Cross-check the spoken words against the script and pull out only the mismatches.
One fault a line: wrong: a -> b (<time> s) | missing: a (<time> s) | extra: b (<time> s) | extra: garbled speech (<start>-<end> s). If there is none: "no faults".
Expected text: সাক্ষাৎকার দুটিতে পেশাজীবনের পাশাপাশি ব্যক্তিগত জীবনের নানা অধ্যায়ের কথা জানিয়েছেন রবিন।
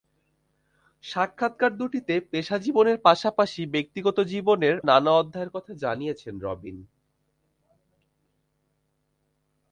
no faults